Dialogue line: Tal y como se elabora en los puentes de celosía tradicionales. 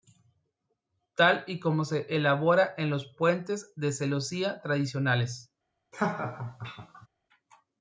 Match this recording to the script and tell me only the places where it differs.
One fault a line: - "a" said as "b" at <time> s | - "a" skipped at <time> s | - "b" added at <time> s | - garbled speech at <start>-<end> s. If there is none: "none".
none